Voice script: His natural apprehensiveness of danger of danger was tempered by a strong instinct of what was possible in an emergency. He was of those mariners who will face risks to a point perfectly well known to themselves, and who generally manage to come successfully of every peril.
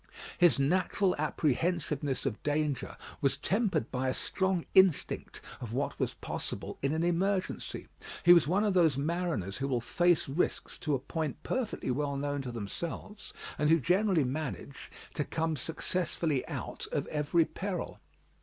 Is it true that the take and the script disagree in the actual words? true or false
true